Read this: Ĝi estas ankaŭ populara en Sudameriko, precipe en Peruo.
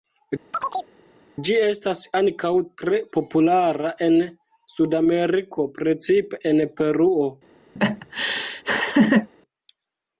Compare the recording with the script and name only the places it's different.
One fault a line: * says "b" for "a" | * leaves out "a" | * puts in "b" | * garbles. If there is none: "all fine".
* puts in "tre"